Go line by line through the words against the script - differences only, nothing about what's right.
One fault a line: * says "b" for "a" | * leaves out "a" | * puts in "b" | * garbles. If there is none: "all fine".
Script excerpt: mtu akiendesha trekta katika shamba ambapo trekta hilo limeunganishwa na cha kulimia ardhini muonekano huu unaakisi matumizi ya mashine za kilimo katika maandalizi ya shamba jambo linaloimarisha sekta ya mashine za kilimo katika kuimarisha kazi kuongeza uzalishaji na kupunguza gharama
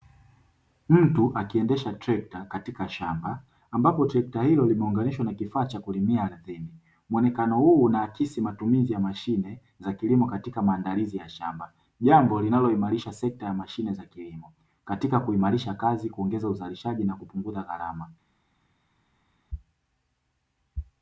* puts in "kifaa"